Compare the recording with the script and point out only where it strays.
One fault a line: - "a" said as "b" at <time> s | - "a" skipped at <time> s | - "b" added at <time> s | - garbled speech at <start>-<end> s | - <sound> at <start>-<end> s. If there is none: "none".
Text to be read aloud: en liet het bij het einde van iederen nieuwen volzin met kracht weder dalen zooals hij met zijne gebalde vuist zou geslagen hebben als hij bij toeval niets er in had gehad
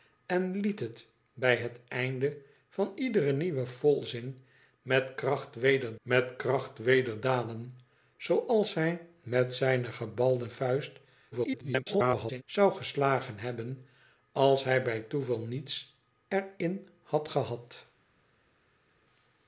- "met kracht weder" added at 6.0 s
- garbled speech at 11.3-12.4 s